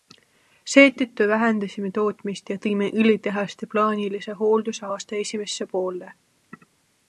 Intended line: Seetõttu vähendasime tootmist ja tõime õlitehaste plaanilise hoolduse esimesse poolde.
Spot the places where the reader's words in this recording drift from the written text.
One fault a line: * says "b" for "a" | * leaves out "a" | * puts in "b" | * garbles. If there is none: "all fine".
* puts in "aasta"